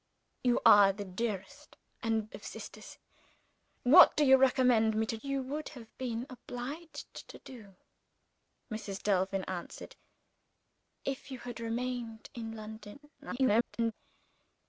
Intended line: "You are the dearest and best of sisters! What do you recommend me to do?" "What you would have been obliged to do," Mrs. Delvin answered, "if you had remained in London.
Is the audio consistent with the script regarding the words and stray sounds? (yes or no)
no